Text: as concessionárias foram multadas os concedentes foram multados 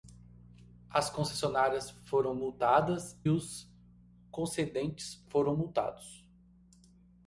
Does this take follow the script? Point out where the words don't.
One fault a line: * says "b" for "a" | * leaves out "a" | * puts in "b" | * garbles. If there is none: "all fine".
all fine